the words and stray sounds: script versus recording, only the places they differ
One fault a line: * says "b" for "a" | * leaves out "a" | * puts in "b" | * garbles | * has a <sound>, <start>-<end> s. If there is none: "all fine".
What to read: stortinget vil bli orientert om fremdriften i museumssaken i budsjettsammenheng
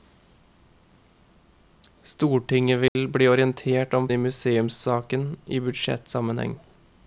* has a dropout, 2.9-3.0 s
* leaves out "fremdriften"